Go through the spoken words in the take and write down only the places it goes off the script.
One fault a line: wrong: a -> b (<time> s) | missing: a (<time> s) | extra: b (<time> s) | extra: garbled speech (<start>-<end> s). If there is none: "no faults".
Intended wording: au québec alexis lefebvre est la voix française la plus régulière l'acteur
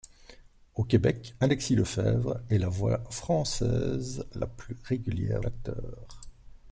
no faults